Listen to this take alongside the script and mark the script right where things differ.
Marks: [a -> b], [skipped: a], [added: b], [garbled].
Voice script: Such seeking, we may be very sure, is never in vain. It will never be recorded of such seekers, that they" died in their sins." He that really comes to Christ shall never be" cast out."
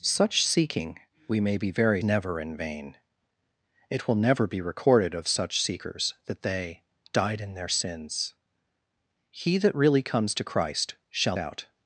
Such seeking, we may be very [skipped: sure, is] never in vain. It will never be recorded of such seekers, that they" died in their sins." He that really comes to Christ shall [skipped: never be" cast] out."